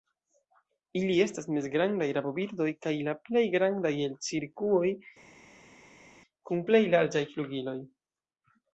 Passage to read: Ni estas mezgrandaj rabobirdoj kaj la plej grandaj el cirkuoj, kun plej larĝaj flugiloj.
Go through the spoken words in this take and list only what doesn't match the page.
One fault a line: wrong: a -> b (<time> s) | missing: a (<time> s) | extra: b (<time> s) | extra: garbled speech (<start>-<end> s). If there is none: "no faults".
wrong: Ni -> Ili (1.0 s)